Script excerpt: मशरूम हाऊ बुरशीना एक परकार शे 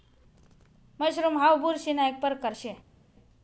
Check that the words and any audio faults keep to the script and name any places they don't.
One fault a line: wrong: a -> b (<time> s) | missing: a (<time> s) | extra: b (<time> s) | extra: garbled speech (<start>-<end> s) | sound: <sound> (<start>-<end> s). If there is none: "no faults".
no faults